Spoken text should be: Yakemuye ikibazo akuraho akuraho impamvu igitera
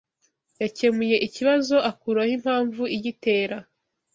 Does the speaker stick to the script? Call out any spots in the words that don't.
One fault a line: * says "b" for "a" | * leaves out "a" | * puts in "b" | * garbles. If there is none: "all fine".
* leaves out "akuraho"